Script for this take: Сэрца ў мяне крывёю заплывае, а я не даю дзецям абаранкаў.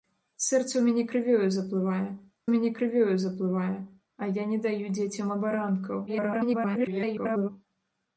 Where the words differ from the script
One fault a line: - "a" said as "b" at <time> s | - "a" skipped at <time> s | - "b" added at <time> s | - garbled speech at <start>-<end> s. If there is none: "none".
- "мяне крывёю заплывае" added at 2.5 s
- garbled speech at 6.1-7.5 s